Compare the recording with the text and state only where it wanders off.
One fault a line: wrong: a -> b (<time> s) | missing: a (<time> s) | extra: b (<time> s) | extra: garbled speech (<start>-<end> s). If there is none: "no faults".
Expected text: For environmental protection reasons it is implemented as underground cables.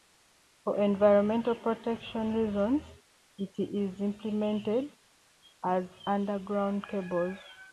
no faults